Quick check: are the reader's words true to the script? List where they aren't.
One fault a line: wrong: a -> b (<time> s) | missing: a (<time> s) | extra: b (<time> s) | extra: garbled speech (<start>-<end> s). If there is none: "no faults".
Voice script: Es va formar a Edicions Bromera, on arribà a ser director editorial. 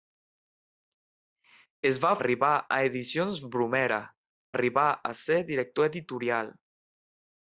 wrong: formar -> arribà (2.2 s)
missing: on (4.0 s)